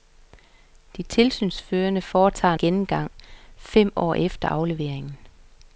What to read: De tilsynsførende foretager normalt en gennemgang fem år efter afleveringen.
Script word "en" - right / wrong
wrong